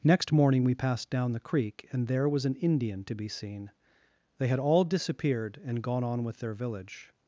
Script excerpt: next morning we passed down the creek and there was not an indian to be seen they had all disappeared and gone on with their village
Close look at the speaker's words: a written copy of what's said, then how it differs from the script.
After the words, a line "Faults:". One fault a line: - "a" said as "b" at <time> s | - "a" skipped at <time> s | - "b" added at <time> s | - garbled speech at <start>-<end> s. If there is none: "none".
next morning we passed down the creek and there was an indian to be seen they had all disappeared and gone on with their village
Faults:
- "not" skipped at 2.4 s